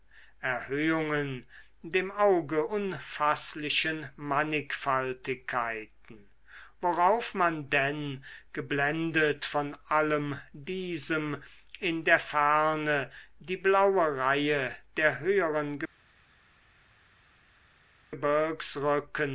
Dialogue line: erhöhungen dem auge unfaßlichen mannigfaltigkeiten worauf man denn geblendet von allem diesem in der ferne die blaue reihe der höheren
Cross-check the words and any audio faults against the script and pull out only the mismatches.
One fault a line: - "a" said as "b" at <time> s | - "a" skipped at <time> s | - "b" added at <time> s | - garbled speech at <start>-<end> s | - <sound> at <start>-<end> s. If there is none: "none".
none